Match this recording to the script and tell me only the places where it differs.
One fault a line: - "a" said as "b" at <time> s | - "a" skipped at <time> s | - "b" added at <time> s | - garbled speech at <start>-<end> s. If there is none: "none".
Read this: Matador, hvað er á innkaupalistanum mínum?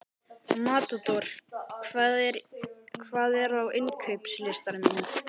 none